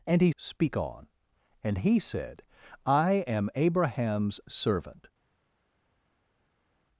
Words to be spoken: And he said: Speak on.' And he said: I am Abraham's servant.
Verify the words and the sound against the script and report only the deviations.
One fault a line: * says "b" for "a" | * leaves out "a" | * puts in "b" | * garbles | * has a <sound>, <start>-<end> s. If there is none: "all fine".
* leaves out "said"